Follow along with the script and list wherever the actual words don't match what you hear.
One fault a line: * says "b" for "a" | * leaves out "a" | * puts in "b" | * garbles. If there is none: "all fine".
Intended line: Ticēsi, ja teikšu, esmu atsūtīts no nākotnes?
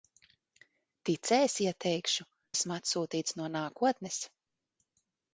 all fine